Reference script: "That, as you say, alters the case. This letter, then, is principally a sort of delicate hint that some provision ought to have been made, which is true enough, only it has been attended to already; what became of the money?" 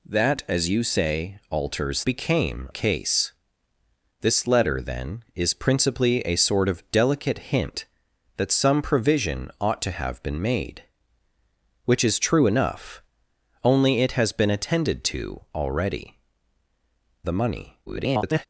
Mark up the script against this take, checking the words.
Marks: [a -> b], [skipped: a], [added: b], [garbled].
"That, as you say, alters [the -> became] case. This letter, then, is principally a sort of delicate hint that some provision ought to have been made, which is true enough, only it has been attended to already; [skipped: what became of] the money?" [garbled]